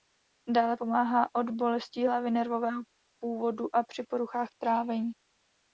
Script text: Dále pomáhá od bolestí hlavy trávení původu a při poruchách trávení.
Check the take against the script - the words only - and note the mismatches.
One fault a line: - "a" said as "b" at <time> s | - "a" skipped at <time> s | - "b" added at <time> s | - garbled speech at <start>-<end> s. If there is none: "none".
- "trávení" said as "nervového" at 2.3 s